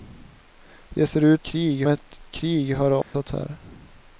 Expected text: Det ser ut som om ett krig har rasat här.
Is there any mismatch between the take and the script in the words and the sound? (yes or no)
yes